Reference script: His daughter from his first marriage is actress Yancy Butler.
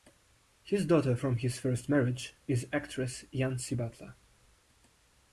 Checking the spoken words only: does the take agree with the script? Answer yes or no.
yes